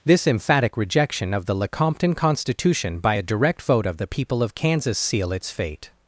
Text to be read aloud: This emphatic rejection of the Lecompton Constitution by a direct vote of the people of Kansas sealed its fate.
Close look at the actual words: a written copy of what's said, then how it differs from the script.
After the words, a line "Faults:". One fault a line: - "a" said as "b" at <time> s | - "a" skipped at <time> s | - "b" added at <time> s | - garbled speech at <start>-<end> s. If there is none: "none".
This emphatic rejection of the Lecompton Constitution by a direct vote of the people of Kansas seal its fate.
Faults:
- "sealed" said as "seal" at 5.0 s